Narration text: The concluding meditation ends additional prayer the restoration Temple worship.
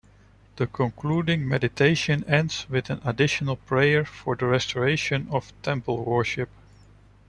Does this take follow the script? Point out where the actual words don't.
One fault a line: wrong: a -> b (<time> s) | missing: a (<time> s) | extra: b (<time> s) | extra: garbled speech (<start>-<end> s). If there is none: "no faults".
extra: with an (2.7 s)
extra: for (4.0 s)
extra: of (5.3 s)